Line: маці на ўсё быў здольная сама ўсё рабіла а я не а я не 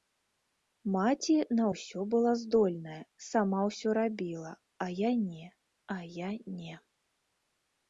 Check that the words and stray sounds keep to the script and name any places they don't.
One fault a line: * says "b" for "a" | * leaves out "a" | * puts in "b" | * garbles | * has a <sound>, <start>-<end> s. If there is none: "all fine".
* says "была" for "быў"